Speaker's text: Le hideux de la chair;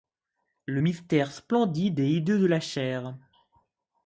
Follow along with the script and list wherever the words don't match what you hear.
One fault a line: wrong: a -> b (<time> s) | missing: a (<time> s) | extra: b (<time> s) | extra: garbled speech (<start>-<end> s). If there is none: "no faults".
extra: mystère splendide et (0.8 s)